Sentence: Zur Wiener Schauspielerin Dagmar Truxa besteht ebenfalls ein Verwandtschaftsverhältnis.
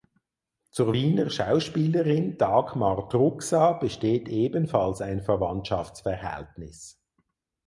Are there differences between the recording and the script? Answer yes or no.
no